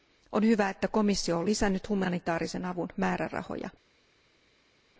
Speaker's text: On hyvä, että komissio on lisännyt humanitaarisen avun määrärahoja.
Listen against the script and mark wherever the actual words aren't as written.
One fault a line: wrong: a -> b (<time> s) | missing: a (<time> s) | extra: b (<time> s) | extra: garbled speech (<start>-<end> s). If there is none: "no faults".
no faults